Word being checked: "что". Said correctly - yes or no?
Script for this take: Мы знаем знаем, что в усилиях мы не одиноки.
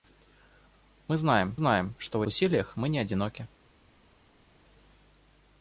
yes